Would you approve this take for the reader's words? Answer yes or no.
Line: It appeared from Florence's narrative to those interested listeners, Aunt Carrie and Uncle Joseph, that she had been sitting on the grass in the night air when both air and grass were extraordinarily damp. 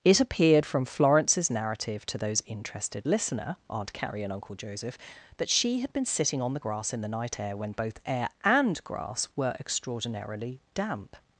no